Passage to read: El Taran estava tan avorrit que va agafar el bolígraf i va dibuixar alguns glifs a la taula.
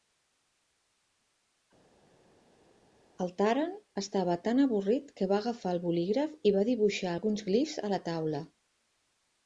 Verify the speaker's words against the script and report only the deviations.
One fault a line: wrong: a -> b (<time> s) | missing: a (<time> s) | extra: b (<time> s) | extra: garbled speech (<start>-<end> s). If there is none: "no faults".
no faults